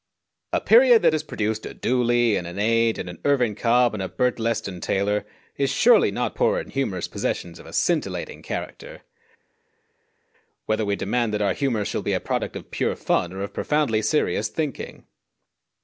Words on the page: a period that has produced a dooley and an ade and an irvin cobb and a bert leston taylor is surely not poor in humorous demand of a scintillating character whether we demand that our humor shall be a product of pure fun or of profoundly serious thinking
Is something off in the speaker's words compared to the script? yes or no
yes